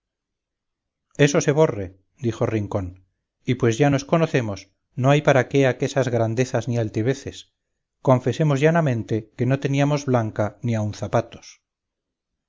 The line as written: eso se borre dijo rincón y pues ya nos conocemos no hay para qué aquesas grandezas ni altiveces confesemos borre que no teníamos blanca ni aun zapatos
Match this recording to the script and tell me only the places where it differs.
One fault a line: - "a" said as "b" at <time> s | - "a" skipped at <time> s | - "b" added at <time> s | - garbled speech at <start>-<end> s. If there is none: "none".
- "borre" said as "llanamente" at 8.6 s